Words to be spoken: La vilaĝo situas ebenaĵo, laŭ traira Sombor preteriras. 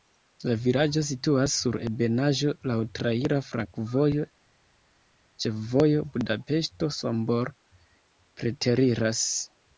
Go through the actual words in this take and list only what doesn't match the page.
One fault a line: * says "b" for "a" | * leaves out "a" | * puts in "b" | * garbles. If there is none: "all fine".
* puts in "sur"
* puts in "flankovojo ĉefvojo Budapeŝto"